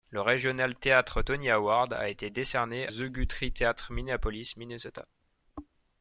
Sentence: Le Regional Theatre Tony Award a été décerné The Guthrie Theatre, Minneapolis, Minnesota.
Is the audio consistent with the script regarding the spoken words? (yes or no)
yes